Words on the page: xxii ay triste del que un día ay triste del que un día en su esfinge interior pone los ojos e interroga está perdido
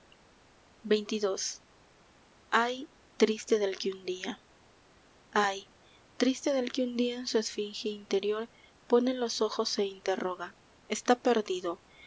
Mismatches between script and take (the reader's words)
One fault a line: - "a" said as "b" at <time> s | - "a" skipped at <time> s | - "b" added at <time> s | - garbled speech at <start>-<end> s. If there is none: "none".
none